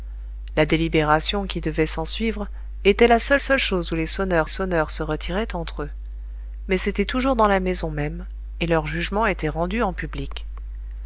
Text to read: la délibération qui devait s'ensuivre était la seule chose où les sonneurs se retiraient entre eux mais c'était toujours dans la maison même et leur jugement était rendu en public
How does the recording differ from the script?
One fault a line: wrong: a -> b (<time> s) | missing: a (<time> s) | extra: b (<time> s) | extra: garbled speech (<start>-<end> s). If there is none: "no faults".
extra: seule (3.4 s)
extra: sonneurs (4.5 s)